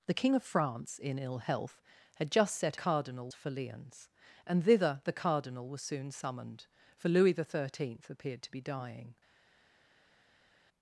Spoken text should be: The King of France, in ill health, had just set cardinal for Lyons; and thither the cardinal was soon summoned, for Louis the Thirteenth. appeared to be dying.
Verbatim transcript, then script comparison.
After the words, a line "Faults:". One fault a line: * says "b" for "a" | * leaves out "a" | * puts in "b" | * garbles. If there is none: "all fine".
The King of France, in ill health, had just set cardinal for Lyons; and thither the cardinal was soon summoned, for Louis the Thirteenth. appeared to be dying.
Faults:
all fine